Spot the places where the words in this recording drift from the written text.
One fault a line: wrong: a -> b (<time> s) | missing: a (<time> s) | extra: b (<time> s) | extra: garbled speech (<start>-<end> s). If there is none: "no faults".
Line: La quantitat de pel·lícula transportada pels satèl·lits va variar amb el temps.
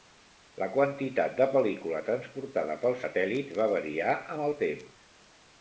no faults